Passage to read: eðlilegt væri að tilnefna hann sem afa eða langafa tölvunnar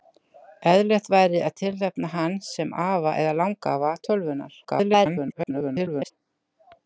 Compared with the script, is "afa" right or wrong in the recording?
right